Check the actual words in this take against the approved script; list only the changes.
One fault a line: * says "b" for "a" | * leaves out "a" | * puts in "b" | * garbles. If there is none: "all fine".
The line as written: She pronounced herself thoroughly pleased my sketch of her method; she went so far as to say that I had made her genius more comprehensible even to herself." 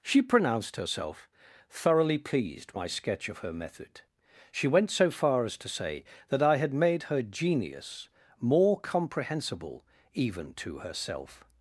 all fine